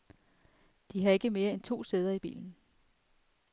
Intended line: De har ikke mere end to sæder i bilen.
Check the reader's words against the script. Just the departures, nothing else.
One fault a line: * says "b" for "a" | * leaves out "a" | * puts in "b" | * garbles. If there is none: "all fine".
all fine